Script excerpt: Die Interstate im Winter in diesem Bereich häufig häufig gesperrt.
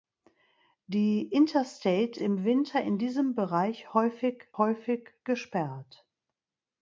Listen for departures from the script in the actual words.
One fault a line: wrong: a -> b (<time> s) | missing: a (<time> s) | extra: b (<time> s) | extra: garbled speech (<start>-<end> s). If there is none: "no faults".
no faults